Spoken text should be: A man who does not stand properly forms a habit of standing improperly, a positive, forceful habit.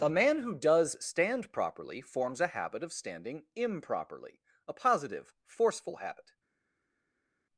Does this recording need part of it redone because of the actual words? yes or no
yes